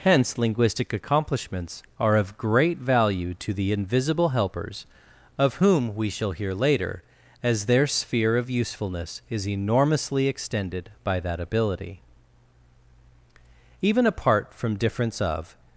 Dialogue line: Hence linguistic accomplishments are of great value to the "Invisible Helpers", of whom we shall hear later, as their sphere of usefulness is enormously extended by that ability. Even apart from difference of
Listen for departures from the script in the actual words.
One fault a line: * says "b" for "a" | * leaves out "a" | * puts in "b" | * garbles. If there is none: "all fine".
all fine